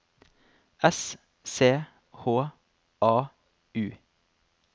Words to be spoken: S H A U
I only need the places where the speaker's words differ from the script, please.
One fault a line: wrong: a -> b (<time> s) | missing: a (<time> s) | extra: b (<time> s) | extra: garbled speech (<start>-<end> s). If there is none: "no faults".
extra: C (1.4 s)